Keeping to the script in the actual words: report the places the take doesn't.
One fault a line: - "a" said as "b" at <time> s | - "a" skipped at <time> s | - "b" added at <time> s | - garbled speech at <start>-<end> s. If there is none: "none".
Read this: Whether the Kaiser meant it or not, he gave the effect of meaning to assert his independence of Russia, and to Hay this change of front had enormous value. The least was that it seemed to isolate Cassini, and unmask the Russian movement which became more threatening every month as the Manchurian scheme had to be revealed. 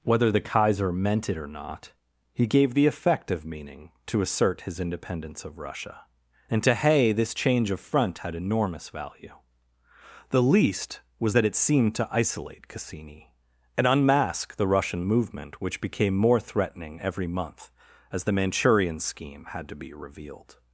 none